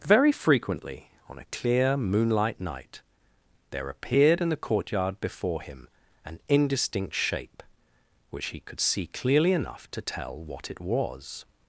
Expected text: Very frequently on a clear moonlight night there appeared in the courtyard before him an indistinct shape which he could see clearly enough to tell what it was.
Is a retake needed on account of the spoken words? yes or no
no